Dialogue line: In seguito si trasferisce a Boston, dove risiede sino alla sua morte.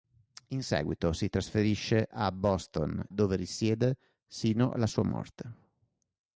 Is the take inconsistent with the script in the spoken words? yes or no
no